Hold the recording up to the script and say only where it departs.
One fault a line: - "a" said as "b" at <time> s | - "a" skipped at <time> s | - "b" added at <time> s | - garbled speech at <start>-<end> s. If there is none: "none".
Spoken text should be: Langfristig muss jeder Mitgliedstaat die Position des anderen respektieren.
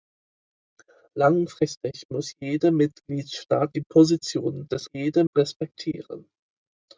- "anderen" said as "jeder" at 4.9 s